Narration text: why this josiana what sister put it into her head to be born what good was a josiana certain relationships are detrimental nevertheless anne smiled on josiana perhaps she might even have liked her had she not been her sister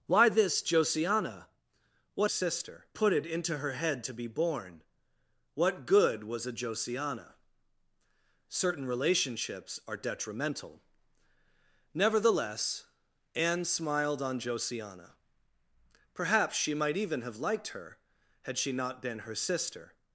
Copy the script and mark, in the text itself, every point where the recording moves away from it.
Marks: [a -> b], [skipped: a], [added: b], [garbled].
why this josiana what sister put it into her head to be born what good was a josiana certain relationships are detrimental nevertheless anne smiled on josiana perhaps she might even have liked her had she not been her sister